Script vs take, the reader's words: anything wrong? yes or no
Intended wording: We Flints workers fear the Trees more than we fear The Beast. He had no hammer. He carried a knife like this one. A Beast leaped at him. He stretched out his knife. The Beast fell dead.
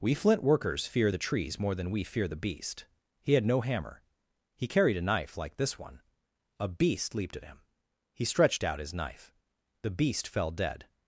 yes